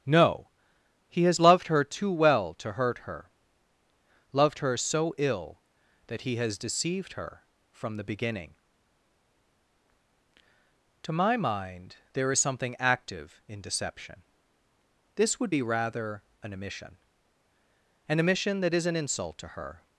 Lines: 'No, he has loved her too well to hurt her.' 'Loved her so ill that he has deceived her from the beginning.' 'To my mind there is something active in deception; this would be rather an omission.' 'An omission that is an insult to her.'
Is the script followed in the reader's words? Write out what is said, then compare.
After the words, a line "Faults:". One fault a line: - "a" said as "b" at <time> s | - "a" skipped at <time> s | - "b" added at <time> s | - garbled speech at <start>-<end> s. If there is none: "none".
'No, he has loved her too well to hurt her.' 'Loved her so ill that he has deceived her from the beginning.' 'To my mind there is something active in deception; this would be rather an omission.' 'An omission that is an insult to her.'
Faults:
none